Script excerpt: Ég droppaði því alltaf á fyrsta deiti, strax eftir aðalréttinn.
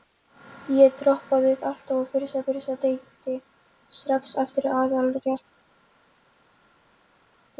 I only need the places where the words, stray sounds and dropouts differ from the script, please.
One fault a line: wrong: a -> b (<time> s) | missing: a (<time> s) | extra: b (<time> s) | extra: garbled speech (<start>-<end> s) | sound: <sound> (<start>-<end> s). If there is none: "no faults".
missing: því (1.5 s)
extra: fyrsta (2.5 s)